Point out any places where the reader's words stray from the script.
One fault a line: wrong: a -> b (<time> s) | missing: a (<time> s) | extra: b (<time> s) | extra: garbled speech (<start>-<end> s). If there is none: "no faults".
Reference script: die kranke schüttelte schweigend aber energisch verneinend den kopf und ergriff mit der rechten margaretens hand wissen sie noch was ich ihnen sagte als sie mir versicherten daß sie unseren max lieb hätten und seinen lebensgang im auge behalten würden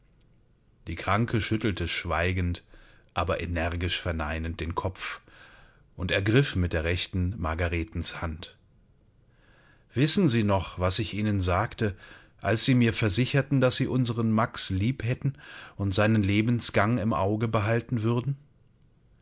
no faults